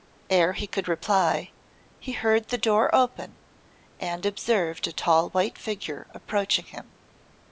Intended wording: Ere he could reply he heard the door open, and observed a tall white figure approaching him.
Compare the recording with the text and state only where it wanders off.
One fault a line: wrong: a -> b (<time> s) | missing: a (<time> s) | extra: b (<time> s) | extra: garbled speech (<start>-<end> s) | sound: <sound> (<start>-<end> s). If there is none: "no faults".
no faults